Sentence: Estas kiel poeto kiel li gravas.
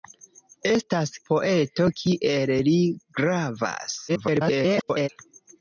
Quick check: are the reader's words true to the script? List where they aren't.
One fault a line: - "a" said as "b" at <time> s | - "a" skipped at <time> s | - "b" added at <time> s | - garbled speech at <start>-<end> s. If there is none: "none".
- "kiel" skipped at 1.1 s
- garbled speech at 4.1-5.1 s